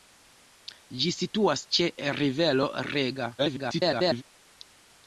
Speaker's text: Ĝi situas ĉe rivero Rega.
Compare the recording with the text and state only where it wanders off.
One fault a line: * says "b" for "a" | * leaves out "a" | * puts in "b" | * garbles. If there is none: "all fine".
* garbles